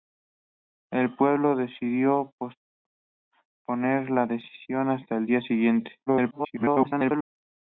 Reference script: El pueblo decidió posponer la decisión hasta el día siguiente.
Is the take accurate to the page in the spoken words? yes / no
no